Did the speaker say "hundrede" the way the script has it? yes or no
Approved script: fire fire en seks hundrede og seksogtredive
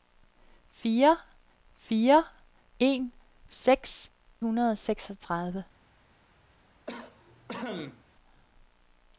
yes